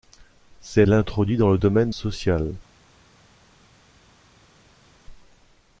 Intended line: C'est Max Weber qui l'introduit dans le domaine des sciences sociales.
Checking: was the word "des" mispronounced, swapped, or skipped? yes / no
yes